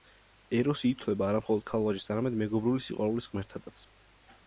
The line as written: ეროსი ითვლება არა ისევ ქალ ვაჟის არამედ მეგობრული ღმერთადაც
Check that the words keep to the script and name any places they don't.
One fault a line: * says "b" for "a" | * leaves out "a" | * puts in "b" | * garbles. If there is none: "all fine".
* says "მხოლოდ" for "ისევ"
* puts in "სიყვარულის"